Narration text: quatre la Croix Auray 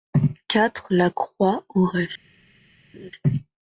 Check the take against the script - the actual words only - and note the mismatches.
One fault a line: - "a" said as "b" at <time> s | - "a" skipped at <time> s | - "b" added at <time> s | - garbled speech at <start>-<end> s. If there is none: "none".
none